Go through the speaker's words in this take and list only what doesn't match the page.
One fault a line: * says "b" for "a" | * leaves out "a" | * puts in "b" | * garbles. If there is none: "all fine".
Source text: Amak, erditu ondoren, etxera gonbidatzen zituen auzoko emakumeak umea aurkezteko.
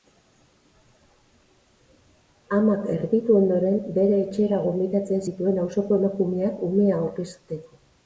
* puts in "bere"